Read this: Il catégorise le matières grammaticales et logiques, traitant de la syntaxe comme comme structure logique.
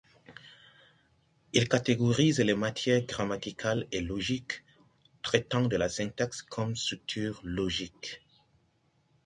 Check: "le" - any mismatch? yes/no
yes